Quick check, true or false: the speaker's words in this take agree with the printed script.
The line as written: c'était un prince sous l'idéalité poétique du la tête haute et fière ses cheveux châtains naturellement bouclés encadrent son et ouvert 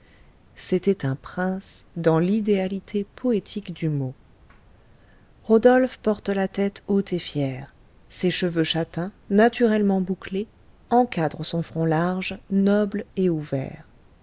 false